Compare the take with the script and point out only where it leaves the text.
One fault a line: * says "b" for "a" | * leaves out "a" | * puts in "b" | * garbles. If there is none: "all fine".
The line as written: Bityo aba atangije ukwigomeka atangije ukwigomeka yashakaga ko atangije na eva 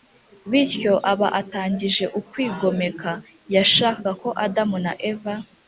* leaves out "atangije ukwigomeka"
* says "adamu" for "atangije"